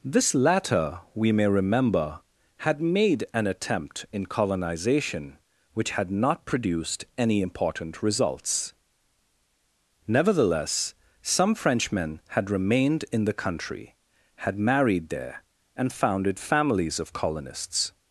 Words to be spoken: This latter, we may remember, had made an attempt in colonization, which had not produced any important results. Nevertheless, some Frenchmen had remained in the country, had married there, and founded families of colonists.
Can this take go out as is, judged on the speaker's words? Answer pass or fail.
pass